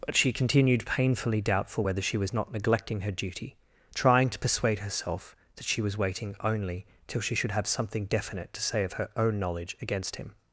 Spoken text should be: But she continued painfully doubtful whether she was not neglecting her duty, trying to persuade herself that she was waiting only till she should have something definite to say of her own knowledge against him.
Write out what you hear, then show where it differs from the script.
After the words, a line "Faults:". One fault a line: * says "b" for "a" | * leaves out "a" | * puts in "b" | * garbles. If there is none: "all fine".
But she continued painfully doubtful whether she was not neglecting her duty, trying to persuade herself that she was waiting only till she should have something definite to say of her own knowledge against him.
Faults:
all fine